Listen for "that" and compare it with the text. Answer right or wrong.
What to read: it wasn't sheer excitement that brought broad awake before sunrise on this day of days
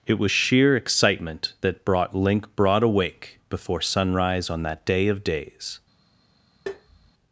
right